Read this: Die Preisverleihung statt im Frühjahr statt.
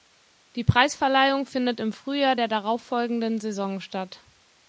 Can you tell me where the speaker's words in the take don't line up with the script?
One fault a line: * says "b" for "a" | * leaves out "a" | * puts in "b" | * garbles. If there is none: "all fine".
* says "findet" for "statt"
* puts in "der darauffolgenden Saison"